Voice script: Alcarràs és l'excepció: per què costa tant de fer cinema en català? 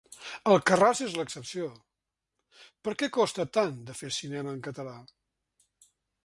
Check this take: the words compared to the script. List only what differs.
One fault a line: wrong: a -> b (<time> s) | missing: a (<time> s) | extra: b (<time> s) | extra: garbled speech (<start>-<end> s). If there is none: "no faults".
no faults